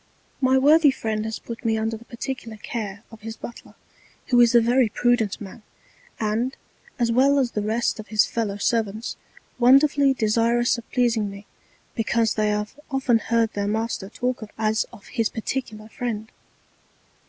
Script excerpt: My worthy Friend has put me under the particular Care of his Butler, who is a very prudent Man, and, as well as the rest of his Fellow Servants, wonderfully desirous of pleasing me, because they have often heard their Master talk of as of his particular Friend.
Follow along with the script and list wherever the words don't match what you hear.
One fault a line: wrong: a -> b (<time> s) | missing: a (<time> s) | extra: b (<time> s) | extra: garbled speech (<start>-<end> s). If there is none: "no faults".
no faults